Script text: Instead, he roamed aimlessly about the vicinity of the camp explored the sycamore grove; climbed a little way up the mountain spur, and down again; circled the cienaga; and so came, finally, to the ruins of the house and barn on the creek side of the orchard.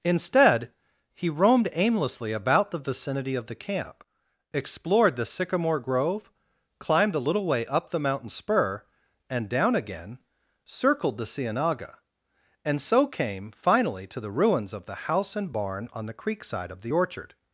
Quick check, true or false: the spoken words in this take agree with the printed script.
true